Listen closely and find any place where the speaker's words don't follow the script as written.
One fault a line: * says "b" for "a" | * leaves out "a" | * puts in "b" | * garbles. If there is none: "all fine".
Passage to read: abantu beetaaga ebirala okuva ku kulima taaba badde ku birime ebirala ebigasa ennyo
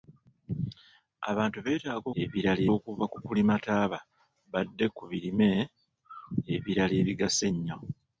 all fine